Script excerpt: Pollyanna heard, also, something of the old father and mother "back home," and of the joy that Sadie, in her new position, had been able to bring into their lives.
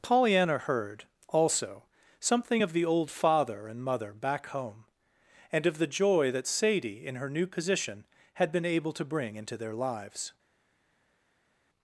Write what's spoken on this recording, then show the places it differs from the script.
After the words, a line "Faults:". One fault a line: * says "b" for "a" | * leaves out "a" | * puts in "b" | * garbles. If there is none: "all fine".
Pollyanna heard, also, something of the old father and mother "back home," and of the joy that Sadie, in her new position, had been able to bring into their lives.
Faults:
all fine